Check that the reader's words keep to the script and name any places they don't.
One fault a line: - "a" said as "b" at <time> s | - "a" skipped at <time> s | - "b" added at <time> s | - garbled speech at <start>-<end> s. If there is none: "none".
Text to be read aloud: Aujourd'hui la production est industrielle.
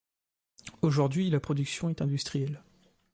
none